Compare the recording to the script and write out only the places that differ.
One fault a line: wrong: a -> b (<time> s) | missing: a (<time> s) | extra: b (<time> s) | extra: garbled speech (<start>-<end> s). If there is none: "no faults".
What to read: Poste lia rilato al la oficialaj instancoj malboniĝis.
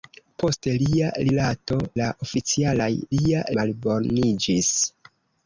missing: al (1.8 s)
wrong: instancoj -> lia (3.2 s)